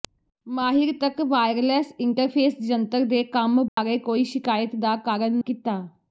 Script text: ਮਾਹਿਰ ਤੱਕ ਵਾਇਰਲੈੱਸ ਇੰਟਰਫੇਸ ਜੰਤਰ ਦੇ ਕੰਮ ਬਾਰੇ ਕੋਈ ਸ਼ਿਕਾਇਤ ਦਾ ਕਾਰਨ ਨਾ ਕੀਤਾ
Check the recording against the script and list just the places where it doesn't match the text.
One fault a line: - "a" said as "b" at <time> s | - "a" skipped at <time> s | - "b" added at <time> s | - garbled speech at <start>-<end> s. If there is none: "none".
- "ਨਾ" skipped at 5.4 s